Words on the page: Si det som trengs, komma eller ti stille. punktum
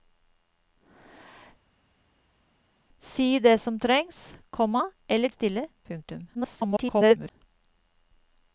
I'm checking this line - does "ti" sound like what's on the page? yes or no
no